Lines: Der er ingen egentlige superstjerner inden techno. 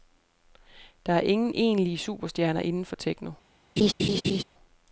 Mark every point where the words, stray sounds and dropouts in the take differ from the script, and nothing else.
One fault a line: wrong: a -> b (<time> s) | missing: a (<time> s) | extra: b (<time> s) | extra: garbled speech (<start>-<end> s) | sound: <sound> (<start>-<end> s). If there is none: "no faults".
extra: for (2.9 s)
sound: laugh (3.8-4.4 s)